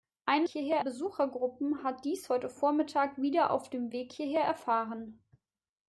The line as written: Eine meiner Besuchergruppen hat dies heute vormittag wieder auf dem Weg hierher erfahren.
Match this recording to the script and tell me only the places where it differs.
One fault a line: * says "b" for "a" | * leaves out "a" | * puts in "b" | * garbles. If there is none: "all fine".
* says "hierher" for "meiner"